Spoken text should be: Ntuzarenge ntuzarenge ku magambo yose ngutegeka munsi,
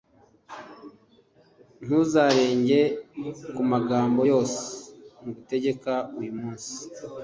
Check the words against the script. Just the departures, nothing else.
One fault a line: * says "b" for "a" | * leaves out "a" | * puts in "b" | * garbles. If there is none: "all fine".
* leaves out "ntuzarenge"
* puts in "uyu"